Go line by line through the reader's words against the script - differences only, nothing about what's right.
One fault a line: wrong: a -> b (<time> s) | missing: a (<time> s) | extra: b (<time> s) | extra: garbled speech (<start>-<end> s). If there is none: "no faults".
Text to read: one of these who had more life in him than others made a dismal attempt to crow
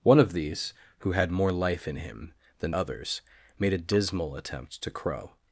no faults